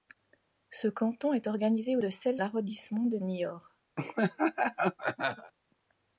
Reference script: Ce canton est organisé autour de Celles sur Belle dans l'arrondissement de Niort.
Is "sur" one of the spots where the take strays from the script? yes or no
yes